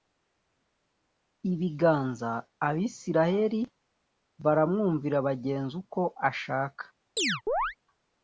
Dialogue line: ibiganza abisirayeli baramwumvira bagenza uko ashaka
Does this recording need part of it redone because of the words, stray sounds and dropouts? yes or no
yes